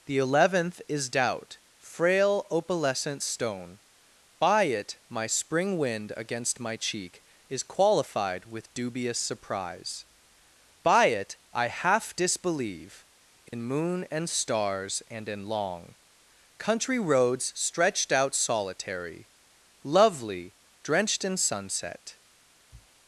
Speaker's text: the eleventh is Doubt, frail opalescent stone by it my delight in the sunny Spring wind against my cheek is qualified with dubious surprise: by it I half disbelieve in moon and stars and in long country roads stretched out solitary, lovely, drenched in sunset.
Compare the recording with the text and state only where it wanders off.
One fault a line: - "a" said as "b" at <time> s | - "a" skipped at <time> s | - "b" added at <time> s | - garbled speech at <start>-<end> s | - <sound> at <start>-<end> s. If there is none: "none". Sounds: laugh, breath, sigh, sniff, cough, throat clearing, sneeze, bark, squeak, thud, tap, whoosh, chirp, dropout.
- "delight in the sunny" skipped at 5.3 s
- dropout at 13.5-13.5 s
- sniff at 22.7-22.9 s